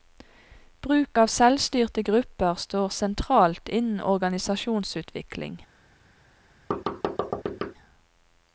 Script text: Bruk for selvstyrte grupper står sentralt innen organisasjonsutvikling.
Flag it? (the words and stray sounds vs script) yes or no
yes